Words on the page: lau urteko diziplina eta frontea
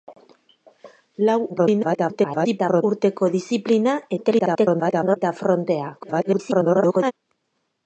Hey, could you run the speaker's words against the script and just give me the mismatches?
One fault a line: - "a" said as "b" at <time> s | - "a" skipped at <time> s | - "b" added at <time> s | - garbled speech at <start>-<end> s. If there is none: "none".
- garbled speech at 1.5-2.8 s
- garbled speech at 4.2-5.2 s
- garbled speech at 6.0-7.1 s